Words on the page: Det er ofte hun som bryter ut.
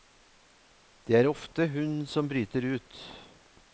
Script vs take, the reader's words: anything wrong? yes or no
no